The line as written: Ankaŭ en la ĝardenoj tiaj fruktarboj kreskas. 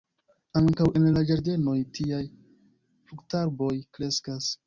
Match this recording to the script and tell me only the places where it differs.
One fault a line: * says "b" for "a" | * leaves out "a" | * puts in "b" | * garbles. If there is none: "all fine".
all fine